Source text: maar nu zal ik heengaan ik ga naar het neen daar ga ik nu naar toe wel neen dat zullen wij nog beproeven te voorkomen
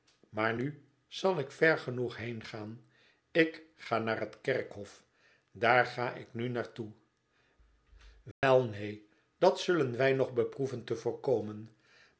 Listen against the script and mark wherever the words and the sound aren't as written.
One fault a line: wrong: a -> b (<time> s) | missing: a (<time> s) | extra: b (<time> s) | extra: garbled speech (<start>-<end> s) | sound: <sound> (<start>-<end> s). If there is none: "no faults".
extra: ver genoeg (1.5 s)
wrong: neen -> kerkhof (4.4 s)
sound: dropout (8.3-8.4 s)